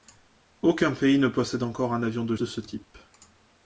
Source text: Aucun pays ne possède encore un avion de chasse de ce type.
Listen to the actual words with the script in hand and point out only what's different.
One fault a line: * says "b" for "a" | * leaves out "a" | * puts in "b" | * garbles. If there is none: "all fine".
* leaves out "chasse"